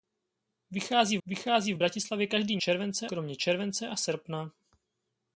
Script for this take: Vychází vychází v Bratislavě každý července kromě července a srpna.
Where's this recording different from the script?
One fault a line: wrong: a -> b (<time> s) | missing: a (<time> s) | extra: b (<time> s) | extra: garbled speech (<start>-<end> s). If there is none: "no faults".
no faults